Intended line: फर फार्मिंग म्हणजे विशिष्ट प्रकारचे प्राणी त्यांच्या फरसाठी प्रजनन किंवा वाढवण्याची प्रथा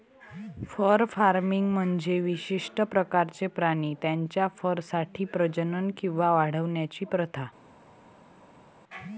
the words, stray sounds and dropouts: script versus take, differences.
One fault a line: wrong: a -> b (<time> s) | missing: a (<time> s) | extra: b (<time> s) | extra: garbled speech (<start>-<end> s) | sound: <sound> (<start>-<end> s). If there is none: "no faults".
no faults